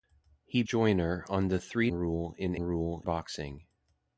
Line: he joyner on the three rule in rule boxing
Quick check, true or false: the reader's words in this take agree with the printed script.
true